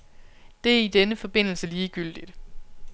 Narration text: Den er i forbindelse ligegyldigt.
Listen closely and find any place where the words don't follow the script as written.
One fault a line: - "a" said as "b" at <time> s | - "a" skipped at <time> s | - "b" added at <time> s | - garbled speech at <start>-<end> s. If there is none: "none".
- "Den" said as "Det" at 0.6 s
- "denne" added at 0.9 s